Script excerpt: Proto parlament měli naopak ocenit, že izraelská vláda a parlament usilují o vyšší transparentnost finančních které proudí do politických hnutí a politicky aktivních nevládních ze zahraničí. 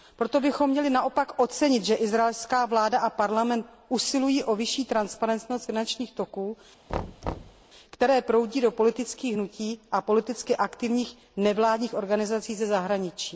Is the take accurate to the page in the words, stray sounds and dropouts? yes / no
no